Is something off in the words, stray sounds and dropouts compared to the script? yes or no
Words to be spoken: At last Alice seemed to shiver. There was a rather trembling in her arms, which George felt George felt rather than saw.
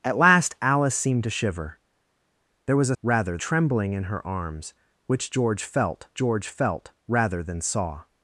no